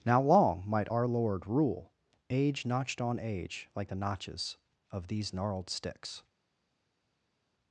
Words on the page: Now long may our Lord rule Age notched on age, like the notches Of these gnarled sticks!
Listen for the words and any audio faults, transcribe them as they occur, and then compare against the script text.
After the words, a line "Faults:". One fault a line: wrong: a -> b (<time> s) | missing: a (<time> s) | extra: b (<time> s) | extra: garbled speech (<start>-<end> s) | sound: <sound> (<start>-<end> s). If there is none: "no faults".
Now long might our Lord rule Age notched on age, like the notches Of these gnarled sticks!
Faults:
wrong: may -> might (0.7 s)